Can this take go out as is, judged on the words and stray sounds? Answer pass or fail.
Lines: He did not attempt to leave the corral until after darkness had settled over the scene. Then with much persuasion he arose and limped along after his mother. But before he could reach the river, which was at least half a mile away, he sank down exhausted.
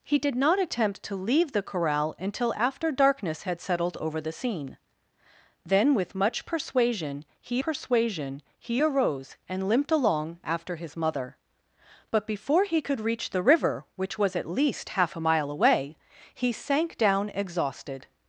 fail